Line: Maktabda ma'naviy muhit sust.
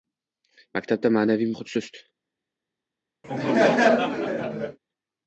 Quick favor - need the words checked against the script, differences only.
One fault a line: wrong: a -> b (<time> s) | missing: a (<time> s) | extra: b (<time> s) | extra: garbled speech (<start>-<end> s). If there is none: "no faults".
no faults